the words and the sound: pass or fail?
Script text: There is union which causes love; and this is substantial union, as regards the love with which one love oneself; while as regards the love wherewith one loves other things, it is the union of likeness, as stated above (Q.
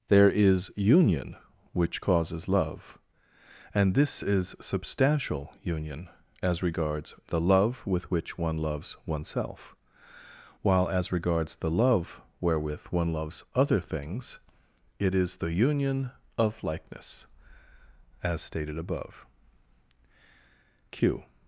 fail